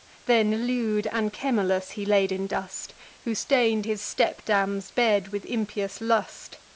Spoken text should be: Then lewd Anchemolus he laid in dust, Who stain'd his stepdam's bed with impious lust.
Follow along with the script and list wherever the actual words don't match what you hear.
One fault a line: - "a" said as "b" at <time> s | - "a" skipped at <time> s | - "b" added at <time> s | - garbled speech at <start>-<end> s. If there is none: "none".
none